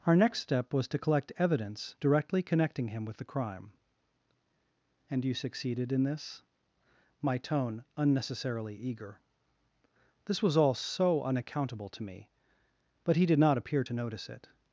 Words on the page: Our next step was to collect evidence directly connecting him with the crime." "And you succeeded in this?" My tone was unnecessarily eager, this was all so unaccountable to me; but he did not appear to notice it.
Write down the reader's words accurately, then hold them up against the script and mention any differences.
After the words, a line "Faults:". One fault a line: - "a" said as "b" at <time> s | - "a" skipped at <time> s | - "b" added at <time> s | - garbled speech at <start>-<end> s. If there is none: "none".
Our next step was to collect evidence directly connecting him with the crime." "And you succeeded in this?" My tone unnecessarily eager, this was all so unaccountable to me; but he did not appear to notice it.
Faults:
- "was" skipped at 7.8 s